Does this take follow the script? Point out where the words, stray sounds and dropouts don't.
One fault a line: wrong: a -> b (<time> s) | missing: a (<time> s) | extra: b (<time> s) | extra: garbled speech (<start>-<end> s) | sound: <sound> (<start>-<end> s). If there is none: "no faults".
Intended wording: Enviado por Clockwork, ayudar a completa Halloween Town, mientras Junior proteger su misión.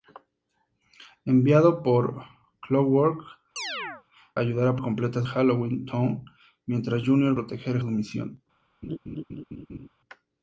sound: chirp (3.6-4.0 s)
sound: laugh (8.8-9.9 s)